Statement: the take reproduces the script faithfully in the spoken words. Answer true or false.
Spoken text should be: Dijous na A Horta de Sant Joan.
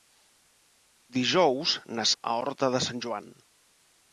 true